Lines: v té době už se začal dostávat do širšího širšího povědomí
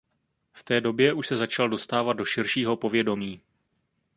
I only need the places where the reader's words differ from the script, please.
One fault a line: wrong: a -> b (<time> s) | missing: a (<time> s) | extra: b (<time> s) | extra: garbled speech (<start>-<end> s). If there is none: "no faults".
missing: širšího (2.8 s)